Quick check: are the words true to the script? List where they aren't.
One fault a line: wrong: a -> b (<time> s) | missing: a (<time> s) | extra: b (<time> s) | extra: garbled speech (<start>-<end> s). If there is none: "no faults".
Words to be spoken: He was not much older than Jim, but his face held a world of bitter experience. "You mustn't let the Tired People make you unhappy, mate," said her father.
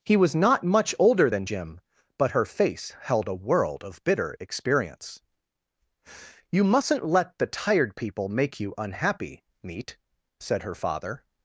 wrong: his -> her (2.3 s)
wrong: mate -> meat (9.6 s)